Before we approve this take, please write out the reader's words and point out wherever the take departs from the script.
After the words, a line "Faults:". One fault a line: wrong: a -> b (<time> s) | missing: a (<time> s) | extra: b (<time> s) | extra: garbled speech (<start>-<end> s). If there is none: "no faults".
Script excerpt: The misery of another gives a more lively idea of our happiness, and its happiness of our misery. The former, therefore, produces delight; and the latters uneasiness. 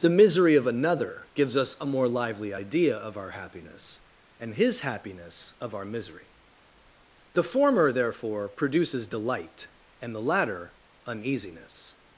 The misery of another gives us a more lively idea of our happiness, and his happiness of our misery. The former, therefore, produces delight; and the latter uneasiness.
Faults:
extra: us (1.6 s)
wrong: its -> his (4.5 s)
wrong: latters -> latter (10.2 s)